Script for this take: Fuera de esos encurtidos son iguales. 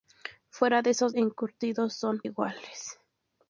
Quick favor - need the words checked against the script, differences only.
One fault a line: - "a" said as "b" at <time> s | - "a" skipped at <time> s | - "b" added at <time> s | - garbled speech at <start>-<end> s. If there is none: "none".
none